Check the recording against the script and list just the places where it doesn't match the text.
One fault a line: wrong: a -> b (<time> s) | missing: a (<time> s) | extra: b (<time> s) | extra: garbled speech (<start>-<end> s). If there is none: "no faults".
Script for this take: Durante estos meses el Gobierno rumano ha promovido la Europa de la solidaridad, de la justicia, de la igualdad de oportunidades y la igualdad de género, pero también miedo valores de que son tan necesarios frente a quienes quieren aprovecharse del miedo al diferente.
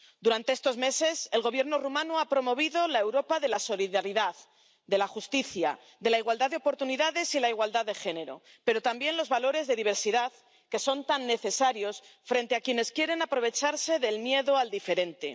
wrong: miedo -> los (9.2 s)
extra: diversidad (9.8 s)